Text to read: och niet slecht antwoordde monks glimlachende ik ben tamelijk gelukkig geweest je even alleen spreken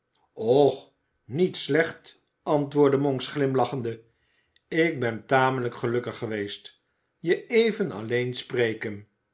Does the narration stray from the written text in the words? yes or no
no